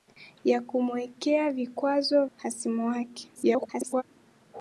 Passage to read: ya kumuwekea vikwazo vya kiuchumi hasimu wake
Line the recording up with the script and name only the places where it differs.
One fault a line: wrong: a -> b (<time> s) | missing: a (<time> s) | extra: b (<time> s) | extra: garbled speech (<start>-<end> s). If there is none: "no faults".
missing: vya kiuchumi (2.2 s)
extra: garbled speech (3.4-4.0 s)